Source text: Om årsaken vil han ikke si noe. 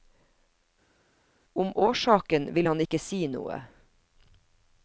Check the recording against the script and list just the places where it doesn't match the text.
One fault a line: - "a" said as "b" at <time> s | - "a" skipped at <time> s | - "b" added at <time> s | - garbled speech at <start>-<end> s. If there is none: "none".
none